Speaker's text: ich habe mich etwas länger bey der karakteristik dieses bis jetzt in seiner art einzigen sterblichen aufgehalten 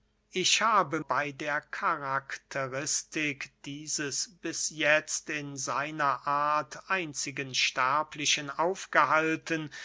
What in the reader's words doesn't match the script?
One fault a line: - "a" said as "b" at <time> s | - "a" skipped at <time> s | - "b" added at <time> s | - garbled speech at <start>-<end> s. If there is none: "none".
- "mich etwas länger" skipped at 1.0 s